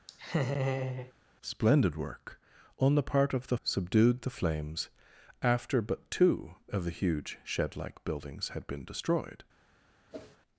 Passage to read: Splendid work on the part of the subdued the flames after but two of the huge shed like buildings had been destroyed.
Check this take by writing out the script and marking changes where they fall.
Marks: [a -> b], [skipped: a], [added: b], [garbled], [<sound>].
[laugh] Splendid work on the part of the subdued the flames after but two of the huge shed like buildings had been destroyed. [whoosh]